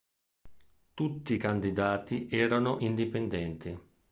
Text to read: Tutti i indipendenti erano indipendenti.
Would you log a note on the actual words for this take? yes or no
yes